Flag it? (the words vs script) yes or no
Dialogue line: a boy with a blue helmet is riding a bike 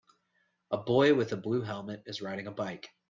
no